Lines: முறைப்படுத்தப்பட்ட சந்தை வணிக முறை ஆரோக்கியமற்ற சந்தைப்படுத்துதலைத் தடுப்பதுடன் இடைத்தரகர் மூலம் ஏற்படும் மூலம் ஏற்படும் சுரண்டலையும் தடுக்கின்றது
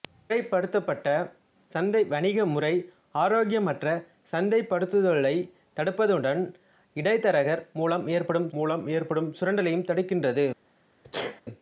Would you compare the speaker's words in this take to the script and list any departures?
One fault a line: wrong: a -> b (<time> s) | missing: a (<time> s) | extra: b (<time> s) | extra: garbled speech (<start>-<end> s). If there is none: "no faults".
no faults